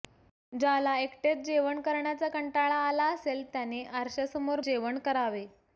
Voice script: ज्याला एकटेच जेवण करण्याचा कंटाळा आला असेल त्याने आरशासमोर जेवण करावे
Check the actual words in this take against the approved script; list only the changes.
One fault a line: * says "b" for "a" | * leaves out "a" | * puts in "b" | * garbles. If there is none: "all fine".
all fine